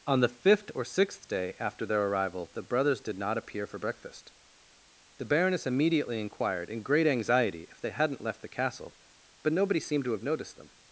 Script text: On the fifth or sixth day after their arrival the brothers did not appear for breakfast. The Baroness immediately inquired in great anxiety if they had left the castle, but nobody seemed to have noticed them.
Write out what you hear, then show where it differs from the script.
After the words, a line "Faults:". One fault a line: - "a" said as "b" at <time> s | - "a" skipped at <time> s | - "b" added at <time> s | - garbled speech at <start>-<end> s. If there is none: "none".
On the fifth or sixth day after their arrival the brothers did not appear for breakfast. The Baroness immediately inquired in great anxiety if they hadn't left the castle, but nobody seemed to have noticed them.
Faults:
- "had" said as "hadn't" at 7.9 s